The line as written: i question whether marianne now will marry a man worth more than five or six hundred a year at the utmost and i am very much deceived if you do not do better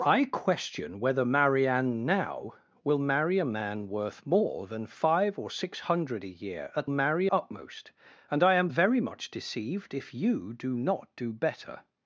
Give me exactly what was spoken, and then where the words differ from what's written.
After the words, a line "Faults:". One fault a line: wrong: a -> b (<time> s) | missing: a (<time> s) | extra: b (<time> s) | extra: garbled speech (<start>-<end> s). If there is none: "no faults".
i question whether marianne now will marry a man worth more than five or six hundred a year at marry utmost and i am very much deceived if you do not do better
Faults:
wrong: the -> marry (6.9 s)